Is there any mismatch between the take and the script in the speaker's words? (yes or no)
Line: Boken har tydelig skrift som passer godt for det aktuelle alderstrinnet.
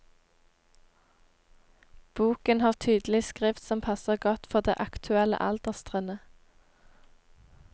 no